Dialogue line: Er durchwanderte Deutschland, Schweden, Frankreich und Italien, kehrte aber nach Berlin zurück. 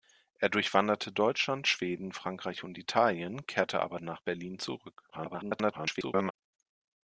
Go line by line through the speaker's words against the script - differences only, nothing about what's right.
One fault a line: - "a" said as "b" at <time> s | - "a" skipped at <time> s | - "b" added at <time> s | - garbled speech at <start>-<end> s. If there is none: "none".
- garbled speech at 5.1-6.3 s